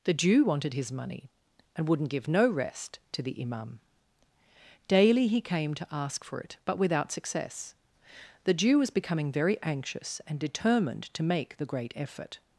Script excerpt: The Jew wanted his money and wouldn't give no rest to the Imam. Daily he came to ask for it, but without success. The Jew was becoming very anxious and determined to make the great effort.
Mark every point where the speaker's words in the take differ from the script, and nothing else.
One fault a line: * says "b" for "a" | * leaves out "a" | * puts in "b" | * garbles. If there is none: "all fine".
all fine